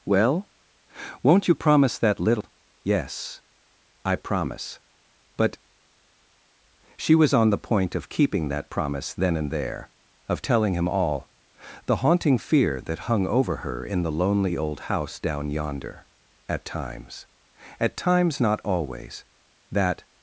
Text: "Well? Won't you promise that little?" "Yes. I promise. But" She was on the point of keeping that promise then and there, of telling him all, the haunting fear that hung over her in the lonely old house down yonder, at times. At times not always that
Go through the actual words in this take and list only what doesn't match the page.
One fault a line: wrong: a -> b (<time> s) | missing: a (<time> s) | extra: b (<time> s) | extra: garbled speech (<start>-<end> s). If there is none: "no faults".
no faults